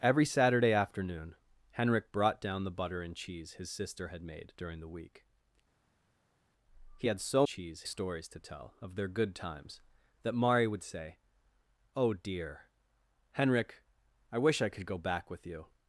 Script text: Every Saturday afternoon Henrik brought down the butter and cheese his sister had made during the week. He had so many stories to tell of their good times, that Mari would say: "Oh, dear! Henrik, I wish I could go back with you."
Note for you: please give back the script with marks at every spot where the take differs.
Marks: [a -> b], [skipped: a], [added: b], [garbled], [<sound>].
Every Saturday afternoon Henrik brought down the butter and cheese his sister had made during the week. He had so [many -> cheese] stories to tell of their good times, that Mari would say: "Oh, dear! Henrik, I wish I could go back with you."